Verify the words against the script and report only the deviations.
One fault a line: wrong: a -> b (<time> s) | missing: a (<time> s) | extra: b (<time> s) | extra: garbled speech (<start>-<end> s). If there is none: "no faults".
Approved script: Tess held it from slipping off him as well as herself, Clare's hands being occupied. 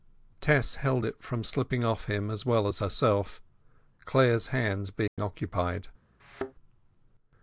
no faults